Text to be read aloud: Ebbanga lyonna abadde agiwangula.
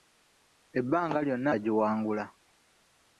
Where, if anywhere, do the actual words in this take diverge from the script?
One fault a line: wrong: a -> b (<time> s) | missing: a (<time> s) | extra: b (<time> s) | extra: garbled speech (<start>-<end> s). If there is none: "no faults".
missing: abadde (1.5 s)